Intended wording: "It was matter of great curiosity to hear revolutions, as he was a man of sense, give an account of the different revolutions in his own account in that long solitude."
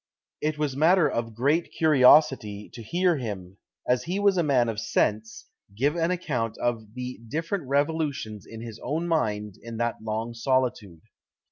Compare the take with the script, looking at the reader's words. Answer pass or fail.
fail